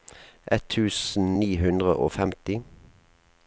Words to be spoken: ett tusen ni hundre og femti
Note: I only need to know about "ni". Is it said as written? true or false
true